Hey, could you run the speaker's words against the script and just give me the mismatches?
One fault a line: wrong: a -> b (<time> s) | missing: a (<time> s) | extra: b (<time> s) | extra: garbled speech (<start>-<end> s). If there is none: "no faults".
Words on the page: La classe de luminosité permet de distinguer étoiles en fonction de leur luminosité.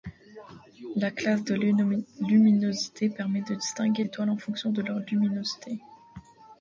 no faults